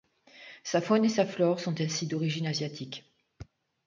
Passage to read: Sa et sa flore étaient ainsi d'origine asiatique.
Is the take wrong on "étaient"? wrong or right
wrong